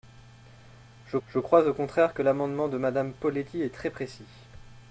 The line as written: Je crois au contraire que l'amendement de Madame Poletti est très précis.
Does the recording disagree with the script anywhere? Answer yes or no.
yes